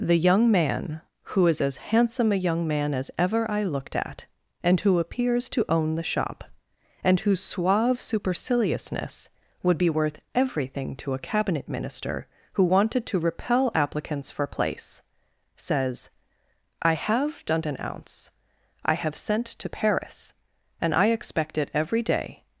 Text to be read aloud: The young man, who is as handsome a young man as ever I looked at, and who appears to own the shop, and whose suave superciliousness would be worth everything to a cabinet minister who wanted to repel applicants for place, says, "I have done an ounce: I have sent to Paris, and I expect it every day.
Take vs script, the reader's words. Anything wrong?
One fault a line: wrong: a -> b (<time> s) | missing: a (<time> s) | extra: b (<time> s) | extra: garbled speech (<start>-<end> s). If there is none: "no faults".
no faults